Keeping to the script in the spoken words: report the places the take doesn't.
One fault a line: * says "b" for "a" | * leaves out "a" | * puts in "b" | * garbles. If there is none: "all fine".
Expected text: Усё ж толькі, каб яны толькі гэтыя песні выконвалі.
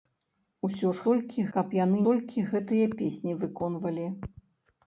all fine